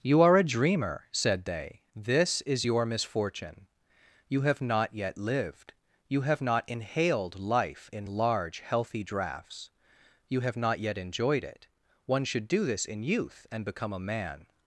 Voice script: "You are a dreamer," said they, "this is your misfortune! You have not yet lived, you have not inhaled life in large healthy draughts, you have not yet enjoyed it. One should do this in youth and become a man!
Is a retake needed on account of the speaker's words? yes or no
no